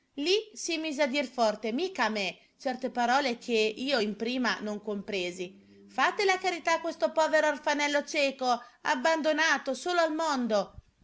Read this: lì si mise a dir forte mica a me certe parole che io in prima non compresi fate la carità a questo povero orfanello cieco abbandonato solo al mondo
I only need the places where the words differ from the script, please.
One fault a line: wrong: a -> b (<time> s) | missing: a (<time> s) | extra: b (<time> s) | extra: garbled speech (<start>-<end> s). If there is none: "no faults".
no faults